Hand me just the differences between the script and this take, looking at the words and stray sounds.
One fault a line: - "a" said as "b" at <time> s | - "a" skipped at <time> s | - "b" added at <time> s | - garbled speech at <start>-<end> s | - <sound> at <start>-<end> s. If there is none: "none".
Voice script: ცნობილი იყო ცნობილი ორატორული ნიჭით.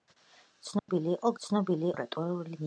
- dropout at 0.8-0.9 s